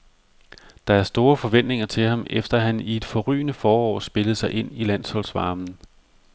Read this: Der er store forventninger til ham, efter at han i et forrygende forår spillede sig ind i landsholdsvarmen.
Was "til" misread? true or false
false